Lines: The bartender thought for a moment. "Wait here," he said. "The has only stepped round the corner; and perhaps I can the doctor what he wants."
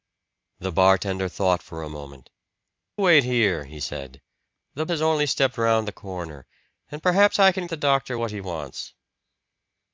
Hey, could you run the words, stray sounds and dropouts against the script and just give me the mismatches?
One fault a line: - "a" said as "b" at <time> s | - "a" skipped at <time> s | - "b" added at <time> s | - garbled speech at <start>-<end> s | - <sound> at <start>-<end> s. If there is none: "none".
none